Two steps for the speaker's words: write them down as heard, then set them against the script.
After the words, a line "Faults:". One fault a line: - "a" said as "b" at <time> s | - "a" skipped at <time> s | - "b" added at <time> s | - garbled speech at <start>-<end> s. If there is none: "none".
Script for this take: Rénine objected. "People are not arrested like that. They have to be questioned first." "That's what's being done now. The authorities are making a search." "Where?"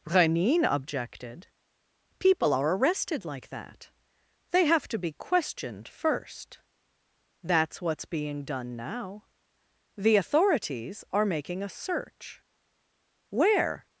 Rénine objected. "People are arrested like that. They have to be questioned first." "That's what's being done now. The authorities are making a search." "Where?"
Faults:
- "not" skipped at 2.8 s